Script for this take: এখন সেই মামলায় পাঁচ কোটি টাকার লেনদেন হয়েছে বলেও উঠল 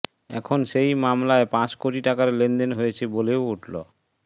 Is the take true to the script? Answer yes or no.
yes